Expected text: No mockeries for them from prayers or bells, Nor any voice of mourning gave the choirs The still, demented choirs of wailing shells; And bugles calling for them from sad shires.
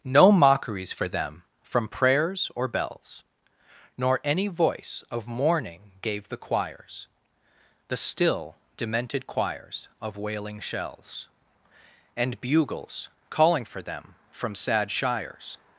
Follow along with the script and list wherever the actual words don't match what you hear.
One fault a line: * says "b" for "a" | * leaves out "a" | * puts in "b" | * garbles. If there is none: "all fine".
all fine